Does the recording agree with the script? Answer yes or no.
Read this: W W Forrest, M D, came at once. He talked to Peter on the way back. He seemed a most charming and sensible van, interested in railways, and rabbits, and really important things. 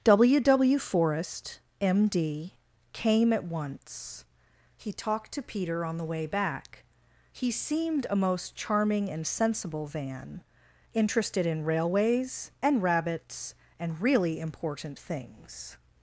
yes